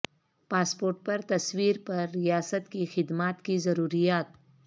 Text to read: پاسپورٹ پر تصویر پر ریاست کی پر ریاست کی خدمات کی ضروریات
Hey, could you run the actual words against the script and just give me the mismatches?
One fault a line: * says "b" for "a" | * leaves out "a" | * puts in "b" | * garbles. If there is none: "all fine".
* leaves out "پر ریاست کی"